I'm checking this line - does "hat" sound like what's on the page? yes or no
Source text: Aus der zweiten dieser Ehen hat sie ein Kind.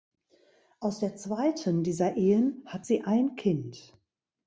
yes